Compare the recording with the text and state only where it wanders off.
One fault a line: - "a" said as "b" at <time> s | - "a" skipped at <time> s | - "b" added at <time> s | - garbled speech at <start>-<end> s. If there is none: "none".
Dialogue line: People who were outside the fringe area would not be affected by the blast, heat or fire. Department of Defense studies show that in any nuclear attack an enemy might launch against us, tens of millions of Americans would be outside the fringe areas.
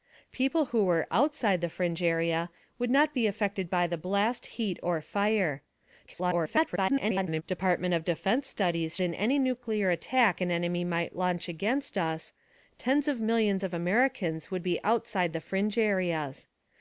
- garbled speech at 6.1-7.4 s
- "show that" skipped at 9.0 s